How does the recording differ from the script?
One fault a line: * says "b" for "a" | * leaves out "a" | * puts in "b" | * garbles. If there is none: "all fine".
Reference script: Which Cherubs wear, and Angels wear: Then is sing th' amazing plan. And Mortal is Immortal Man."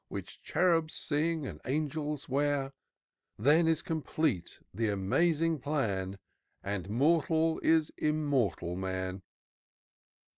* says "sing" for "wear"
* says "complete" for "sing"